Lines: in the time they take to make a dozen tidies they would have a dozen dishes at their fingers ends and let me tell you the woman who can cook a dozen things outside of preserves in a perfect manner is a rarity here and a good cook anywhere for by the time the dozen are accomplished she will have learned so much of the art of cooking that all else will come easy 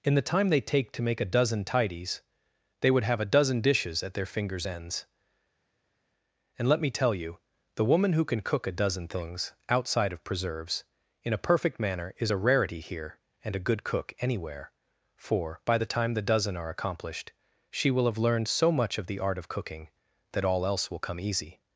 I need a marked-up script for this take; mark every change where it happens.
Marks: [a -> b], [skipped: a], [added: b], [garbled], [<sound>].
in the time they take to make a dozen tidies they would have a dozen dishes at their fingers ends and let me tell you the woman who can cook a dozen things outside of preserves in a perfect manner is a rarity here and a good cook anywhere for by the time the dozen are accomplished she will have learned so much of the art of cooking that all else will come easy